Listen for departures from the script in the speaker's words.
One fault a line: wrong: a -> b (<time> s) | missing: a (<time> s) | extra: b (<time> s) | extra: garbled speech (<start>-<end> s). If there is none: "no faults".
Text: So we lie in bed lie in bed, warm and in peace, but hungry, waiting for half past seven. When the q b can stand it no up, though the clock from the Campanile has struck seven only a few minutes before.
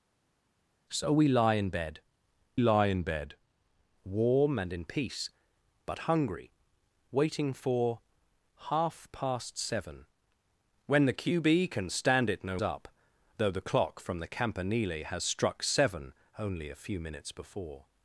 no faults